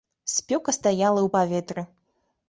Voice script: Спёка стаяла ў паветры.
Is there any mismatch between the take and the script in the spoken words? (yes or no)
no